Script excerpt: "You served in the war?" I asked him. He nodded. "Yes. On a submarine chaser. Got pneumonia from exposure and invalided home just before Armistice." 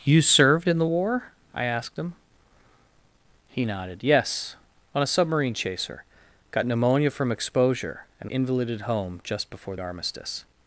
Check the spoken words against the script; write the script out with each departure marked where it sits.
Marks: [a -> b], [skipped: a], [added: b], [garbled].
"You served in the war?" I asked him. He nodded. "Yes. On a submarine chaser. Got pneumonia from exposure and invalided home just before Armistice."